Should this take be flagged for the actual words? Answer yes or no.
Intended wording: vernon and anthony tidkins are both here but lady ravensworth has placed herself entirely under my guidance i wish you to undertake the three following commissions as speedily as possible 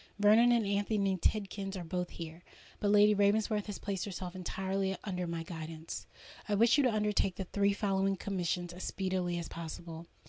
no